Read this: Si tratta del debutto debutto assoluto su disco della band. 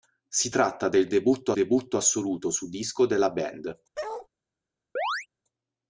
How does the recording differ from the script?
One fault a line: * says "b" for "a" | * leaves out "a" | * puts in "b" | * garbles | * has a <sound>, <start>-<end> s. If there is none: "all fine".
* has a bark, 3.9-4.3 s
* has a chirp, 5.0-5.3 s